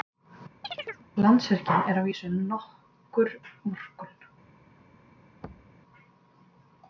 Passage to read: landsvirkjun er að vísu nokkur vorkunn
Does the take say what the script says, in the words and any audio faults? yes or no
no